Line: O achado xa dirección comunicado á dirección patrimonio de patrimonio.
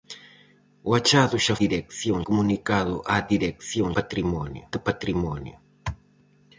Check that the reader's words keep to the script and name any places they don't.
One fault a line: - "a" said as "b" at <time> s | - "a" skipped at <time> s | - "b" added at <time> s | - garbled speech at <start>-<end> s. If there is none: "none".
none